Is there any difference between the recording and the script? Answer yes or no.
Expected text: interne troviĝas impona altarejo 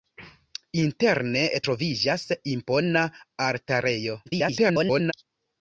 yes